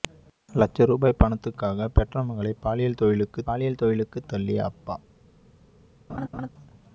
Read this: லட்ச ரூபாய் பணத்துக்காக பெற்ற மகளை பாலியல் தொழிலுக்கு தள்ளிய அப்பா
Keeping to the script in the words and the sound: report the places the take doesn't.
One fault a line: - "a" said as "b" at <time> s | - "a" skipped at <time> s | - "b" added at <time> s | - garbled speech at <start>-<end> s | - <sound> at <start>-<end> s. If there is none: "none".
- "பாலியல் தொழிலுக்கு" added at 3.4 s
- laugh at 6.1-6.5 s